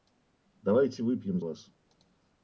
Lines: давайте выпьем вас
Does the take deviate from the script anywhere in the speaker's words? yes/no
no